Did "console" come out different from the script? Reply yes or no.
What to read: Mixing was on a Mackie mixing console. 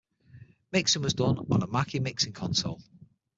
no